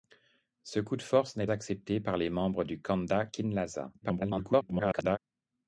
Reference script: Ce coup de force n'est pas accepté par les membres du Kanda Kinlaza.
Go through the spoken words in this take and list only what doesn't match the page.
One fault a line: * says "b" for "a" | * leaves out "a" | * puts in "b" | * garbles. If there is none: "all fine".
* leaves out "pas"
* garbles